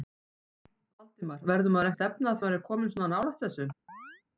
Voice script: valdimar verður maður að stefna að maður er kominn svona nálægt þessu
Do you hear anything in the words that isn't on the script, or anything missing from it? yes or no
no